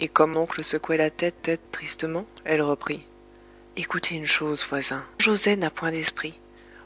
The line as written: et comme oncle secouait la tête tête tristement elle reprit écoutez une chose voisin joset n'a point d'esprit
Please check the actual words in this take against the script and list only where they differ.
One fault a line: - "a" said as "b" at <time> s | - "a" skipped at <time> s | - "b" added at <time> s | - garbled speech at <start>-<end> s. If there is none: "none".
none